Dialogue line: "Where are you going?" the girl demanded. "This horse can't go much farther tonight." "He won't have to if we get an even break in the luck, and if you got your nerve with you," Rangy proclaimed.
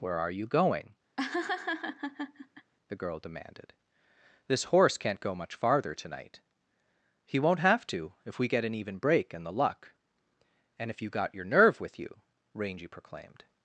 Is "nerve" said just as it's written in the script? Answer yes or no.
yes